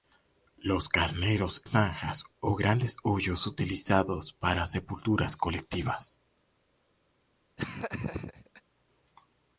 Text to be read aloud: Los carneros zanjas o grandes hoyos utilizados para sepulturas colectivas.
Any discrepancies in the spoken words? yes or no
no